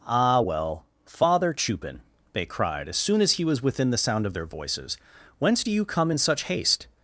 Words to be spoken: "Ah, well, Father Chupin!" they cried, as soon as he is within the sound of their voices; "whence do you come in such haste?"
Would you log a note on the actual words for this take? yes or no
yes